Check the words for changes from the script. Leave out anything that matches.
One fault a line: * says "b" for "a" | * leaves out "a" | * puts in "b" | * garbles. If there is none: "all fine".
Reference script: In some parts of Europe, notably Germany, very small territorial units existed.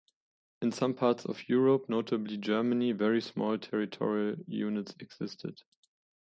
all fine